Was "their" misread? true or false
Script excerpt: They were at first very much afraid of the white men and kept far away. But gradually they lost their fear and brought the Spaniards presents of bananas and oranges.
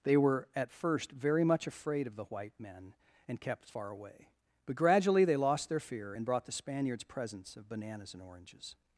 false